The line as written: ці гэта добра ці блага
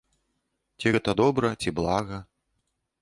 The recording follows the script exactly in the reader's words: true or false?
true